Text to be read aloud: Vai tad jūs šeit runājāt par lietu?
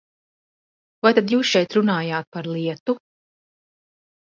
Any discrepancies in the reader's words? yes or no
no